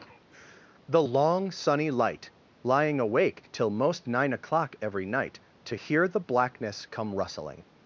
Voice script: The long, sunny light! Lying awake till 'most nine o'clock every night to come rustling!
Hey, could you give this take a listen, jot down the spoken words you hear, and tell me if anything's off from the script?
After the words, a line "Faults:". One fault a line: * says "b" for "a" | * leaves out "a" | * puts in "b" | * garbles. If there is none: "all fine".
The long, sunny light! Lying awake till 'most nine o'clock every night to hear the blackness come rustling!
Faults:
* puts in "hear the blackness"